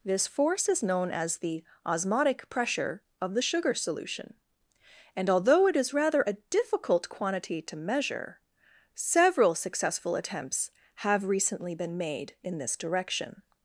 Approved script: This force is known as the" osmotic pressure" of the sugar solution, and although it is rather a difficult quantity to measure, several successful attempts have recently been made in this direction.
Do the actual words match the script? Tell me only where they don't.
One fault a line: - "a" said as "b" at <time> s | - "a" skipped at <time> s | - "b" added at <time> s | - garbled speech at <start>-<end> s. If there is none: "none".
none